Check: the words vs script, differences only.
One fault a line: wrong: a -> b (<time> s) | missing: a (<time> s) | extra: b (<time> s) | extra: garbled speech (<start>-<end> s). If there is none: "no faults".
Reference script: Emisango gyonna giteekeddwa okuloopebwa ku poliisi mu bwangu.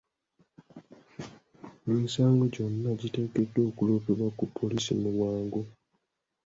no faults